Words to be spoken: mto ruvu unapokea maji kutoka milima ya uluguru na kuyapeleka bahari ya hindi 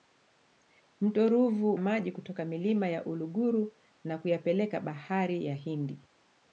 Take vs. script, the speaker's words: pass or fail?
fail